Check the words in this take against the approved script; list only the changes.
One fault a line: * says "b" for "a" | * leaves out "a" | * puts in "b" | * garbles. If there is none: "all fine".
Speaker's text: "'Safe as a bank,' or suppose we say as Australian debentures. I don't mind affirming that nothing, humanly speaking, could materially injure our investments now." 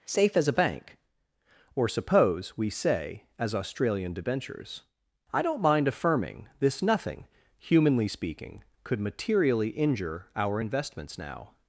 * says "this" for "that"